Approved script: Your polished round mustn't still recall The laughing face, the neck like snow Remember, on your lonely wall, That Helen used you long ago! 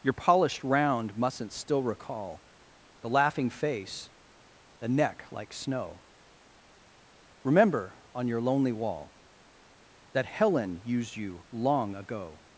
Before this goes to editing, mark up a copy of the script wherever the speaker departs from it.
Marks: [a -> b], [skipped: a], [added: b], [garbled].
Your polished round mustn't still recall The laughing face, the neck like snow Remember, on your lonely wall, That Helen used you long ago!